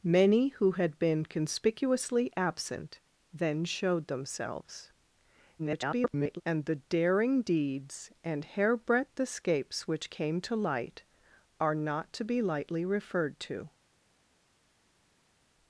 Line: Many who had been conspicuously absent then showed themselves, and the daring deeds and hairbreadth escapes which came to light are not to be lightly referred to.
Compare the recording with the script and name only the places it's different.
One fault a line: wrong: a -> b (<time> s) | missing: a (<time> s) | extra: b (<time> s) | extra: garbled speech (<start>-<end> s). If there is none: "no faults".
extra: garbled speech (5.6-6.4 s)